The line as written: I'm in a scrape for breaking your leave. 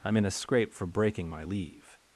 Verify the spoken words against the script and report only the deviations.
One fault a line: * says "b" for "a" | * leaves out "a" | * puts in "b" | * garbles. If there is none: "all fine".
* says "my" for "your"